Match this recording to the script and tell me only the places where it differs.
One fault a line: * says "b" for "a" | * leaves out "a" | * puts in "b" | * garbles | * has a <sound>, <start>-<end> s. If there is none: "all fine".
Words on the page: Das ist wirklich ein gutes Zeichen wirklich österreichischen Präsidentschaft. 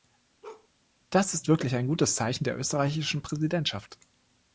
* has a bark, 0.4-0.7 s
* says "der" for "wirklich"